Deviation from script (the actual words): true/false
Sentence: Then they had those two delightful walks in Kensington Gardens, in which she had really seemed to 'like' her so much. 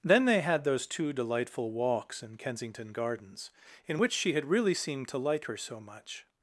false